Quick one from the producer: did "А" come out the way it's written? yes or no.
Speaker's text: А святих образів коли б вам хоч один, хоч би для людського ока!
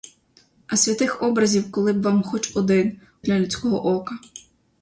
yes